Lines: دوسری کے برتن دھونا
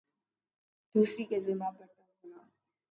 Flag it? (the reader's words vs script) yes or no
yes